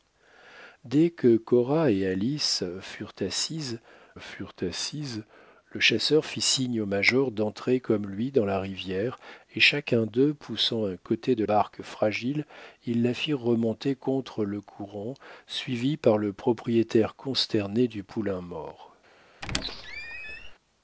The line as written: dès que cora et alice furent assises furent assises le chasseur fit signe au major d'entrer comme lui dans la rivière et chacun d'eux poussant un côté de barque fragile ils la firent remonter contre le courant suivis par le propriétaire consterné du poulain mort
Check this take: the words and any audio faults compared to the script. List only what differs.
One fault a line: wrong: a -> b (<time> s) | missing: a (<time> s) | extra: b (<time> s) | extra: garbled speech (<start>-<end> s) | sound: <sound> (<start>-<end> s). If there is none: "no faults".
sound: squeak (19.4-20.5 s)